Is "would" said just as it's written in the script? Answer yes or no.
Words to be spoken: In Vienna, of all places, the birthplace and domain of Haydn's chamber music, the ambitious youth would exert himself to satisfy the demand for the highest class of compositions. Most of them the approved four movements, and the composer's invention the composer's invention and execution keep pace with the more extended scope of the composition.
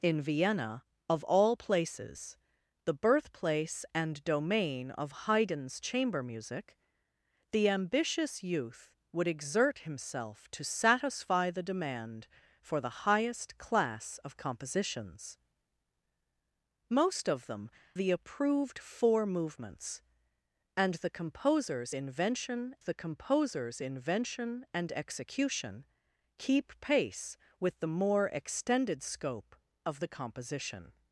yes